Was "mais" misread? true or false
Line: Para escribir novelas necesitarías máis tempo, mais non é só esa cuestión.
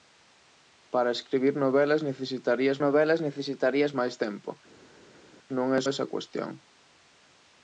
true